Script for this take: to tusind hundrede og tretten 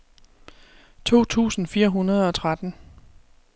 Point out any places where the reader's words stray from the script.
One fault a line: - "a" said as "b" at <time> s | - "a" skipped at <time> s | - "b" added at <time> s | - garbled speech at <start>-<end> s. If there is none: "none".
- "fire" added at 1.7 s